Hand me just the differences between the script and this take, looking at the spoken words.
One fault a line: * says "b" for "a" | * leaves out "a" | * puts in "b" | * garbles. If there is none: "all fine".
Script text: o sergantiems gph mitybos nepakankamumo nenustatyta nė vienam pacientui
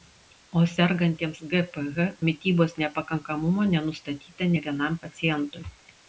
all fine